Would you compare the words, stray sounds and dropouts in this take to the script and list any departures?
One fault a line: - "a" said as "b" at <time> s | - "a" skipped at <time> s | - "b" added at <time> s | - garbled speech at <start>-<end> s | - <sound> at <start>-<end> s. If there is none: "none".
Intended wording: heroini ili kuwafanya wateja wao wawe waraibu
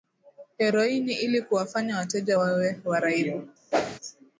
- "wao" skipped at 2.4 s
- whoosh at 3.7-4.0 s